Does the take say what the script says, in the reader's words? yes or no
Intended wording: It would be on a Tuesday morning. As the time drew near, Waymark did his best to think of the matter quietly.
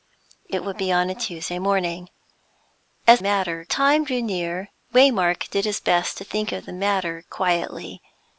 no